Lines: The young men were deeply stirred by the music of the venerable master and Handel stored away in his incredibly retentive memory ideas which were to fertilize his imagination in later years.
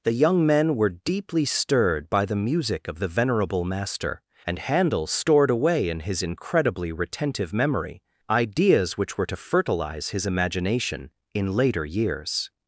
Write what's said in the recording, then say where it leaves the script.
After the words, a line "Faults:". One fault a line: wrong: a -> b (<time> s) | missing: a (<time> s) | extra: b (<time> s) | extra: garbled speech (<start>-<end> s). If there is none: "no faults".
The young men were deeply stirred by the music of the venerable master and Handel stored away in his incredibly retentive memory ideas which were to fertilize his imagination in later years.
Faults:
no faults